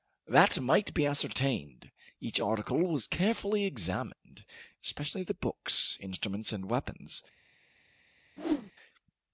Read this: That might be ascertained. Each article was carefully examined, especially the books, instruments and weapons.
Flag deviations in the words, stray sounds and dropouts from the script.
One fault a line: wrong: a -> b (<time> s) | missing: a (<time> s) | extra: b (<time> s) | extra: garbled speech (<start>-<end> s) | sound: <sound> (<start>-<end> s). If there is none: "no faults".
sound: whoosh (8.4-8.7 s)